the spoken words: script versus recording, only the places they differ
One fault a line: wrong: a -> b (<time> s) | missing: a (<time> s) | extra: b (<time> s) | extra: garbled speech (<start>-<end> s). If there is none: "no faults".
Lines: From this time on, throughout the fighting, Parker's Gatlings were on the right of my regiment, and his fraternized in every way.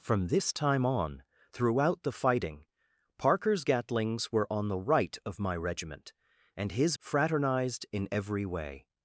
no faults